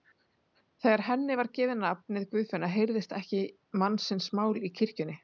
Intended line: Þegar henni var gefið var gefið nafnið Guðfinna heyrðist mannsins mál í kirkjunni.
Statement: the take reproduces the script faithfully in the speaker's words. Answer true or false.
false